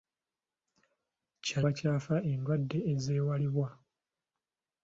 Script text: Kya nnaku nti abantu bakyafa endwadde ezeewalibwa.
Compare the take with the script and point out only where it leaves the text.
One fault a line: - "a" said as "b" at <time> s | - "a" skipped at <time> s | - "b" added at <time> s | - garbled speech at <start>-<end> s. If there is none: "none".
- "nnaku nti abantu" skipped at 1.6 s